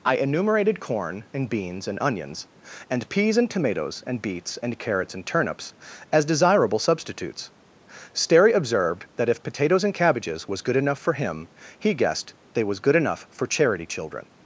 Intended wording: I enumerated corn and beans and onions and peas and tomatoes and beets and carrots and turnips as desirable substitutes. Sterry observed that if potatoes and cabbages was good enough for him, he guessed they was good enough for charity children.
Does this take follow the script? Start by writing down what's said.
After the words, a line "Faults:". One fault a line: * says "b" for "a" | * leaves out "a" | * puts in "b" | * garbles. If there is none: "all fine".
I enumerated corn and beans and onions and peas and tomatoes and beets and carrots and turnips as desirable substitutes. Sterry observed that if potatoes and cabbages was good enough for him, he guessed they was good enough for charity children.
Faults:
all fine